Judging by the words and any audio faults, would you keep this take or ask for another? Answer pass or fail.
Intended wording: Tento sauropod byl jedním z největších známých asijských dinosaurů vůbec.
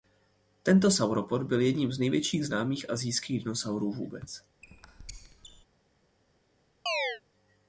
fail